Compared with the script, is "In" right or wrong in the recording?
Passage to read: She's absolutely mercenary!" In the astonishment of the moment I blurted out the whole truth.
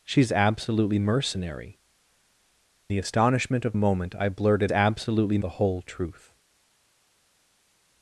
wrong